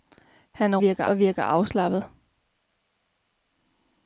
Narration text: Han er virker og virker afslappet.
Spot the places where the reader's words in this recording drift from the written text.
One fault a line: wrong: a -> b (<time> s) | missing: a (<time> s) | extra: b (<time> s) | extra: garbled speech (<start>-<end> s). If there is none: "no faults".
no faults